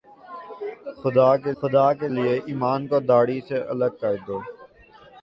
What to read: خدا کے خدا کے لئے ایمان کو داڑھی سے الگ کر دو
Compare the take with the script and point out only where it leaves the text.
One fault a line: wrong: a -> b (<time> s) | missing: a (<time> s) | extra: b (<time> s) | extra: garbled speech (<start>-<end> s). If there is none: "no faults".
no faults